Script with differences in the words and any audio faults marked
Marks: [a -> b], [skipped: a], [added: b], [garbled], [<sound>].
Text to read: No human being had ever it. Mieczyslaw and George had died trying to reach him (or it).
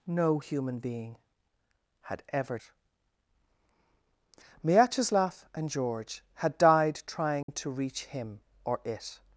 No human being had ever it. Mieczyslaw and George had died trying [dropout] to reach him (or it).